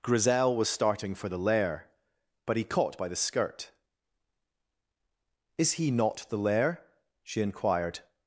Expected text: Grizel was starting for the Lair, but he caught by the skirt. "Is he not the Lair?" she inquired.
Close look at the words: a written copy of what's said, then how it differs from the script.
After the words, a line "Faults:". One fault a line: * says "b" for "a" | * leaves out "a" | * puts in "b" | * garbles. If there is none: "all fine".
Grizel was starting for the Lair, but he caught by the skirt. "Is he not the Lair?" she inquired.
Faults:
all fine